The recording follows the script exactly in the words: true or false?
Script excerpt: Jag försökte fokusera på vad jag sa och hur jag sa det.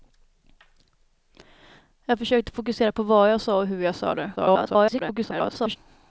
false